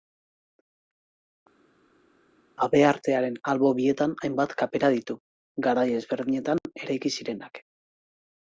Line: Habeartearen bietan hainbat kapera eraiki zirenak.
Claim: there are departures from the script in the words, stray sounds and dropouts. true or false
true